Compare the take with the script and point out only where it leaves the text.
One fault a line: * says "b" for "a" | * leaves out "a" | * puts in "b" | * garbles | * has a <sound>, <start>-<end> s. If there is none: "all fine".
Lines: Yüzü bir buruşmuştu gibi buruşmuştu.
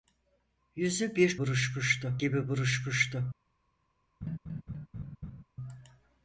* has a laugh, 4.2-5.4 s